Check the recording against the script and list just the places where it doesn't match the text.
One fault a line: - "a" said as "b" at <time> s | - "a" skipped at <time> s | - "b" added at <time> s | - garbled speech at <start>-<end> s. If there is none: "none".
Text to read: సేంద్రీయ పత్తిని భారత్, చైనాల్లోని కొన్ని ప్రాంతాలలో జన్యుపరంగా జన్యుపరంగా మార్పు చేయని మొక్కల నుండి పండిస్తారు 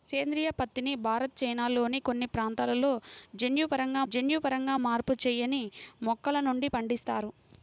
none